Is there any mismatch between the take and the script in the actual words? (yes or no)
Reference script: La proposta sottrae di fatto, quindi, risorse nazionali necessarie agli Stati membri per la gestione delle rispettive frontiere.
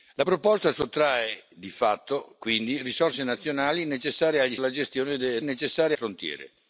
yes